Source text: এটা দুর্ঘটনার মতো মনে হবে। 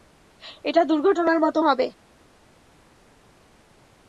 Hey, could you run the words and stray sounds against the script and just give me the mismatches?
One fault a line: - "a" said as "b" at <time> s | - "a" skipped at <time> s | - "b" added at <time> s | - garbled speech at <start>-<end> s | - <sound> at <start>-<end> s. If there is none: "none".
- "মনে" skipped at 1.6 s